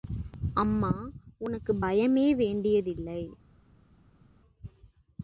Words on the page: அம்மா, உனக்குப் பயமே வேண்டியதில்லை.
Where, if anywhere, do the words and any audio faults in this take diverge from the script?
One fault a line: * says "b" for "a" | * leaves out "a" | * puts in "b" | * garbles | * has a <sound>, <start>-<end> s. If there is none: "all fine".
all fine